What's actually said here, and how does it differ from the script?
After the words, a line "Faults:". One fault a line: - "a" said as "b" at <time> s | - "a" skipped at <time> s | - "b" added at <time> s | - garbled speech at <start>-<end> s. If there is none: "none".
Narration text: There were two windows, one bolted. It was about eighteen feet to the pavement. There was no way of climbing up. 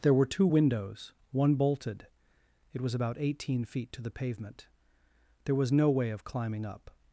There were two windows, one bolted. It was about eighteen feet to the pavement. There was no way of climbing up.
Faults:
none